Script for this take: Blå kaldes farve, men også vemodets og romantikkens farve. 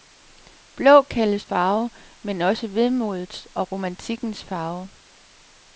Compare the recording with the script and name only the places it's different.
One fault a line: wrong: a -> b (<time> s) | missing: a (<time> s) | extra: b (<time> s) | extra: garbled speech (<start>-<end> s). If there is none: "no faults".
no faults